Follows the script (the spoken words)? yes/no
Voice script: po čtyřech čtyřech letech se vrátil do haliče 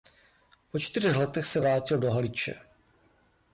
no